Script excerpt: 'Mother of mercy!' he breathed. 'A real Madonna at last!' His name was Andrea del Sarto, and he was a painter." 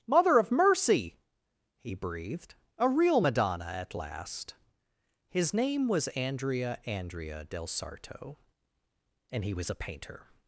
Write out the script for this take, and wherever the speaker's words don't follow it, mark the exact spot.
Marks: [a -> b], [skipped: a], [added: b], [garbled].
'Mother of mercy!' he breathed. 'A real Madonna at last!' His name was Andrea [added: Andrea] del Sarto, and he was a painter."